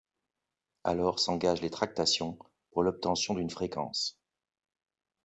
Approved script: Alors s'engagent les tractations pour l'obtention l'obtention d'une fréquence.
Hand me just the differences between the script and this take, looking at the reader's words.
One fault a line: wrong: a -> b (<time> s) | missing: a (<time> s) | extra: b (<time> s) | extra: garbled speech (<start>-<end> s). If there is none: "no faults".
missing: l'obtention (3.4 s)